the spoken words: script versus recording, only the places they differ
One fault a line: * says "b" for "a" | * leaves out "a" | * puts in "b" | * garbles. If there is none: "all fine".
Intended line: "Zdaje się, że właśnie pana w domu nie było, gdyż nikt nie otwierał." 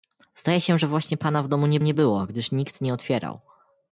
* puts in "nie"